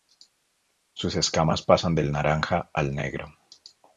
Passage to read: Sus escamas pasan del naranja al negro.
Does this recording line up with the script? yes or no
yes